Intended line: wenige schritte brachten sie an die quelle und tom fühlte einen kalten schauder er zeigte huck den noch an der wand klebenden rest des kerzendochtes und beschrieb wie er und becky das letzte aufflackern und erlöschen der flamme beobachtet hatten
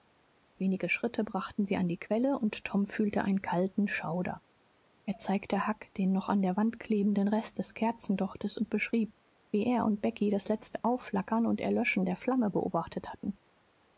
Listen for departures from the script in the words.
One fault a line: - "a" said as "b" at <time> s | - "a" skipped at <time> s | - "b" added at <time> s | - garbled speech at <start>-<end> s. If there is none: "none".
none